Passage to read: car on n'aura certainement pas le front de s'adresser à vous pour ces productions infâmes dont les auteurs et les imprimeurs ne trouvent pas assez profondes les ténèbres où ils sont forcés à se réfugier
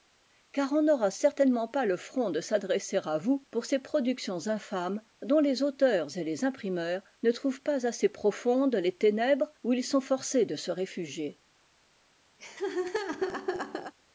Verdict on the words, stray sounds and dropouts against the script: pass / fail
fail